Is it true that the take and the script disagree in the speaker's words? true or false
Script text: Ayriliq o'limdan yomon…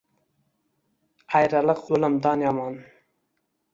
false